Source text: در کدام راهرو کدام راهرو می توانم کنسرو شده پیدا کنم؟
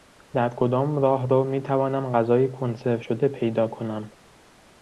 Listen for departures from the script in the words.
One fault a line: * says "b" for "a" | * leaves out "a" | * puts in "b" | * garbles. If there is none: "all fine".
* leaves out "کدام راهرو"
* puts in "غذای"